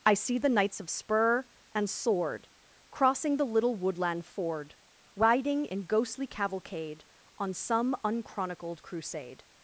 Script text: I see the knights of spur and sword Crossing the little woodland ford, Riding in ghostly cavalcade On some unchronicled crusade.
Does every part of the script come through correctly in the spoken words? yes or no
yes